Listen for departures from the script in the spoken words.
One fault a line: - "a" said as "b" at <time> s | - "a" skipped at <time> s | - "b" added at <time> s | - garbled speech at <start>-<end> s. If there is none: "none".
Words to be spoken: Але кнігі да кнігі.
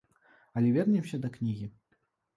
- "кнігі" said as "вернемся" at 0.7 s